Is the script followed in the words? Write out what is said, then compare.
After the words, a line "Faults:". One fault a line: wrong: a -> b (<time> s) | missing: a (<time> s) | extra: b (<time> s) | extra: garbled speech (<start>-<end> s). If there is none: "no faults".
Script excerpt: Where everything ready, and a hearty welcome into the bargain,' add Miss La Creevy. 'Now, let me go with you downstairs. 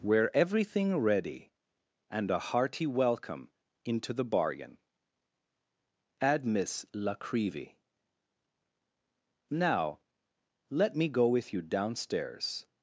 Where everything ready, and a hearty welcome into the bargain,' add Miss La Creevy. 'Now, let me go with you downstairs.
Faults:
no faults